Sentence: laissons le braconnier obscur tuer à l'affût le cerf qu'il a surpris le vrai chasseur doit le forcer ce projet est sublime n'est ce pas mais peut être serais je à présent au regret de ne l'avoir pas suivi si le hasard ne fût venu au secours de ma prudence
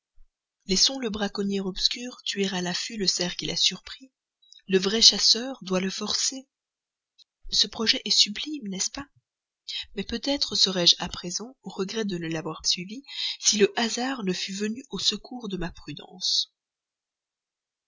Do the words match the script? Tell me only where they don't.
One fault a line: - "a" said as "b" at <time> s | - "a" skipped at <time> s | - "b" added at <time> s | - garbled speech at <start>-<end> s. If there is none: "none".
- "pas" skipped at 12.6 s